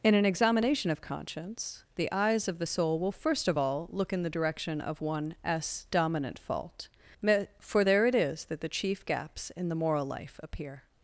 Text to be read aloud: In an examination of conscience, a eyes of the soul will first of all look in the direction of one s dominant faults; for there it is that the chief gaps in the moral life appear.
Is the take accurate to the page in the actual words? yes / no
no